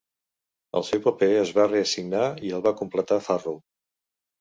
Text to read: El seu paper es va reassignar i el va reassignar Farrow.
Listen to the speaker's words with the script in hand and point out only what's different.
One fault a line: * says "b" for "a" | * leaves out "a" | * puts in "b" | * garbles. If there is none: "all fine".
* says "completar" for "reassignar"